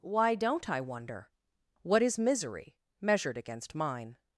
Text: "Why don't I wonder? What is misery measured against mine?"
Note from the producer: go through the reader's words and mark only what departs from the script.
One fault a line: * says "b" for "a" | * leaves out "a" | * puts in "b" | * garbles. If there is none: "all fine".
all fine